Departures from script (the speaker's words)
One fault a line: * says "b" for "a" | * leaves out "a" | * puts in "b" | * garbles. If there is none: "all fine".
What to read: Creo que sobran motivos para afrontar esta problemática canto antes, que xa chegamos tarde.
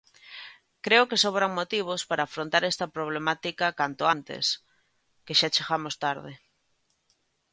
all fine